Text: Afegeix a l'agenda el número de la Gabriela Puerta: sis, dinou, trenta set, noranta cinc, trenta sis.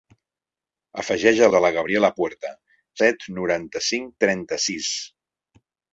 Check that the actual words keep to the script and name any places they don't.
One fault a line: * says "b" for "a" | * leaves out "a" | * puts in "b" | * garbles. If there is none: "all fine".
* leaves out "l'agenda el número"
* leaves out "sis dinou trenta"